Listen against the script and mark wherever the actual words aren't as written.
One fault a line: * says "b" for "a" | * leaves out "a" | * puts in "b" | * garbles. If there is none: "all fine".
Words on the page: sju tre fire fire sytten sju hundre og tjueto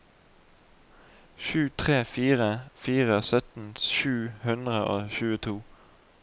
all fine